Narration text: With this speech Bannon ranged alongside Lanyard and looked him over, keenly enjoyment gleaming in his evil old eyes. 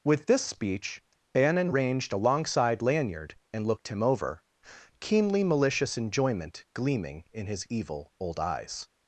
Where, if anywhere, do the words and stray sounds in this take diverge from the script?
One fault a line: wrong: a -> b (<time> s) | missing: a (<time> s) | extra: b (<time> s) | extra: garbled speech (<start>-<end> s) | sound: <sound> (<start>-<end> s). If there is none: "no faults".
extra: malicious (5.4 s)